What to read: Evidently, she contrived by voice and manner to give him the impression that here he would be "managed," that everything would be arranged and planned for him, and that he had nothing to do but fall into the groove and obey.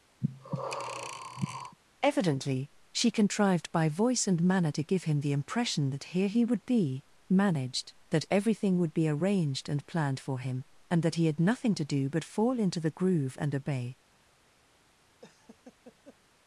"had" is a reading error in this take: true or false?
false